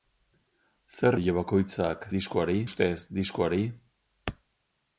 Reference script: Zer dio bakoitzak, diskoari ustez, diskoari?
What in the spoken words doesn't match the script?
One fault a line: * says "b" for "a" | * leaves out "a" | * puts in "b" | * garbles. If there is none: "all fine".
all fine